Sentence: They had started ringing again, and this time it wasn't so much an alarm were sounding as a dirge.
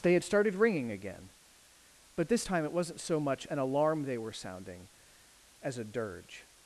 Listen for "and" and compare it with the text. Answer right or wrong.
wrong